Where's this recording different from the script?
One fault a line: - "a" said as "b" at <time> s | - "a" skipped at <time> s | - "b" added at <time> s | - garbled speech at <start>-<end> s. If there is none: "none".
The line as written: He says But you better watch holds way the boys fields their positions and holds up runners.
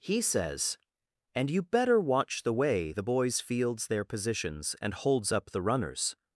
- "But" said as "And" at 1.4 s
- "holds" said as "the" at 2.4 s
- "the" added at 5.5 s